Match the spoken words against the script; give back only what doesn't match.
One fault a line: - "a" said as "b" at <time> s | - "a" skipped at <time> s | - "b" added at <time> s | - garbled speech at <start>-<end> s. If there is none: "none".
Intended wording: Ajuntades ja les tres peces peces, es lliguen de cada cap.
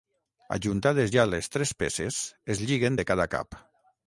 - "peces" skipped at 2.2 s